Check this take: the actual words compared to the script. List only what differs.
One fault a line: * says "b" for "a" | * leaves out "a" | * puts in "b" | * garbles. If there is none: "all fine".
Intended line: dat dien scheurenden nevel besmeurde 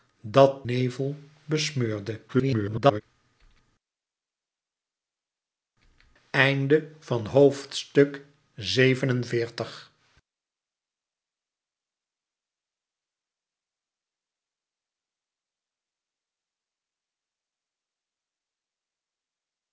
* leaves out "dien scheurenden"
* garbles